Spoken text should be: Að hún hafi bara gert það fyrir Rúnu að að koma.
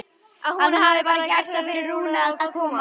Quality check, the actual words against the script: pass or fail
pass